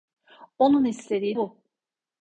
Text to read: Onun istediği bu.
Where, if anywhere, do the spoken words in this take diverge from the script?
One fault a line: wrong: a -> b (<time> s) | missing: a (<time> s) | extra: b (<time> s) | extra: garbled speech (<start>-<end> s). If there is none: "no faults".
no faults